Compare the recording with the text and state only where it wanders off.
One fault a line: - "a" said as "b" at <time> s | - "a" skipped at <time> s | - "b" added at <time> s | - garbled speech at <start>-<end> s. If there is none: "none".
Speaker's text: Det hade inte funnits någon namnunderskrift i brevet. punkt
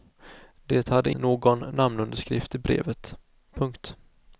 - "inte funnits" skipped at 1.1 s